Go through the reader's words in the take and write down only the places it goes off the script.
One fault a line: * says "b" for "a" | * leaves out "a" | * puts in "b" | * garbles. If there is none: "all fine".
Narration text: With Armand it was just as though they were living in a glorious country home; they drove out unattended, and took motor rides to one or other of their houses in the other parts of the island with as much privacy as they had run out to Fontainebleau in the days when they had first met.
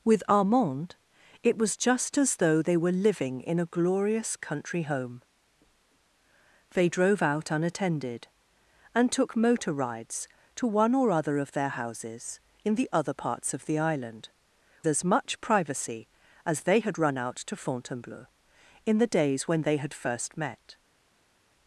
* leaves out "with"